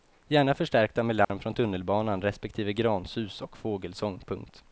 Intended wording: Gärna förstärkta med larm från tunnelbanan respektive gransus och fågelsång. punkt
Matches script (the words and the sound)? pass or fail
fail